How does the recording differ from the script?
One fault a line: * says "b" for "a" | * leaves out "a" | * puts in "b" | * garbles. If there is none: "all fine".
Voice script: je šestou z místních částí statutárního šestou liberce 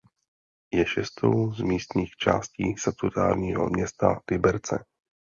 * says "města" for "šestou"